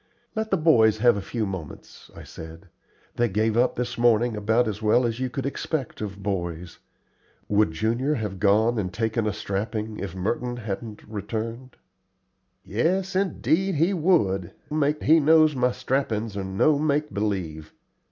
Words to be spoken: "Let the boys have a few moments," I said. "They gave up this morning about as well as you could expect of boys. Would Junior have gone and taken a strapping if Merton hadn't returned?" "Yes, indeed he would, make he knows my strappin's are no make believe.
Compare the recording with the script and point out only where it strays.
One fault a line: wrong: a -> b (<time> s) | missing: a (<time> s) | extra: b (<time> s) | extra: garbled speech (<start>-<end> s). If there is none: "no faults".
no faults